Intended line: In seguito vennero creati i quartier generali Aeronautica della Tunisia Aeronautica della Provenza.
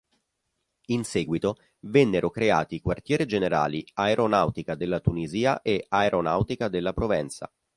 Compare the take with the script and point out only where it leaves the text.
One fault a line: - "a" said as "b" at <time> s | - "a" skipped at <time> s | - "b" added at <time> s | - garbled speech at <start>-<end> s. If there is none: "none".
- "e" added at 5.6 s